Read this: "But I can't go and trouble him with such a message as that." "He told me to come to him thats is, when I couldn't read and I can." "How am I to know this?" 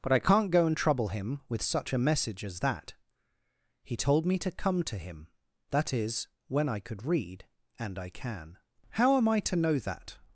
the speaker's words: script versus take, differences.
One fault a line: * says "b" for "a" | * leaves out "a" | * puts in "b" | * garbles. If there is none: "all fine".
* says "that" for "thats"
* says "could" for "couldn't"
* says "that" for "this"